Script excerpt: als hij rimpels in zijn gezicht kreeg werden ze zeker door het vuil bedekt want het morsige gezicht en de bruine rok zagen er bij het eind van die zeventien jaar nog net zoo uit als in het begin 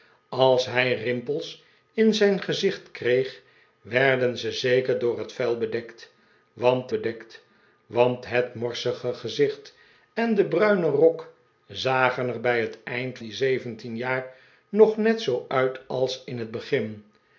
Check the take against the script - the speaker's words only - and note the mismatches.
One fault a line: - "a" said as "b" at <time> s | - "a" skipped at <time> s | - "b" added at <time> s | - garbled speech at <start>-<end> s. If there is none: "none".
- "bedekt want" added at 6.9 s
- "van" skipped at 13.2 s